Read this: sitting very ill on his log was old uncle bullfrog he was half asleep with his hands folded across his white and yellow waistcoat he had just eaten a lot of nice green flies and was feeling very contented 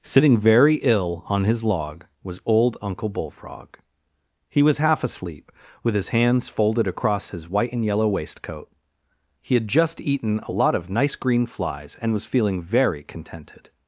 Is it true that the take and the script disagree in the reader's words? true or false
false